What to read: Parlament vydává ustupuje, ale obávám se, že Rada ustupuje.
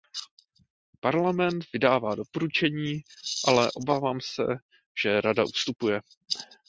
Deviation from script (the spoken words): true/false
true